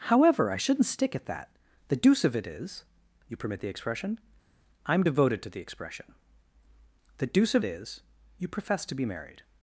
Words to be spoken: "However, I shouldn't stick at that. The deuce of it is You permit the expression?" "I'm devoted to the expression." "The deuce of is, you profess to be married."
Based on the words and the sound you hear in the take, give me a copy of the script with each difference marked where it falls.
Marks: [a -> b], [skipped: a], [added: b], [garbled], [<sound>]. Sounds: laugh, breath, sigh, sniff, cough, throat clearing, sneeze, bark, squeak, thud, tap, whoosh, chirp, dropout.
"However, I shouldn't stick at that. The deuce of it is You permit the expression?" "I'm devoted to the expression." "The deuce of is, you profess to be married."